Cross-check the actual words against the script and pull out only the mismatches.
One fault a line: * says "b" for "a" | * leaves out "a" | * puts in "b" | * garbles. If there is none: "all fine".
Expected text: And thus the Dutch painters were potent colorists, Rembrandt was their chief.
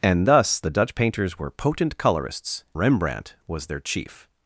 all fine